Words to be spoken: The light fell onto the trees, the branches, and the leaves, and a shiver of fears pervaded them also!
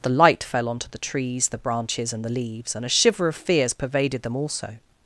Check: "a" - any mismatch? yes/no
no